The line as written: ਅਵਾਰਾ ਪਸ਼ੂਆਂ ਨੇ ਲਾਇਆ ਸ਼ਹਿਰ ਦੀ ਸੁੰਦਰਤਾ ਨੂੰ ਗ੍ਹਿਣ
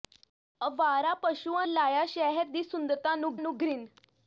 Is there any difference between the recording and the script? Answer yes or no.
yes